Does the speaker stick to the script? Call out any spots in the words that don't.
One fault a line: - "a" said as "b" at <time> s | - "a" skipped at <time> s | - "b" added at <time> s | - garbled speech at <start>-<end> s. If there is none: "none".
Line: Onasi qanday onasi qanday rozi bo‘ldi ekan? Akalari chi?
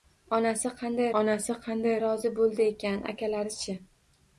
none